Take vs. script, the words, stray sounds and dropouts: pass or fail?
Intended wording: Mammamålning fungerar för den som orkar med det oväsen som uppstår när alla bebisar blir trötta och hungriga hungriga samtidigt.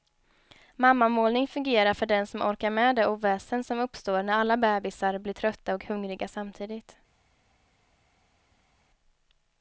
fail